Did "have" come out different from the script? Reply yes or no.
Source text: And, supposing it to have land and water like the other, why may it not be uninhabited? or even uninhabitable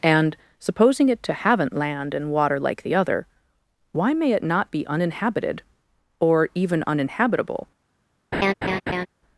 yes